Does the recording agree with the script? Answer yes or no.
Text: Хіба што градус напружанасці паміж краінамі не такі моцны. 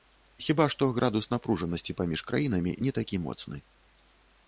yes